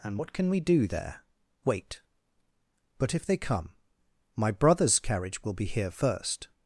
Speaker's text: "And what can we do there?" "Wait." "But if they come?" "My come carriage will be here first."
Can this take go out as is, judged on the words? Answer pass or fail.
fail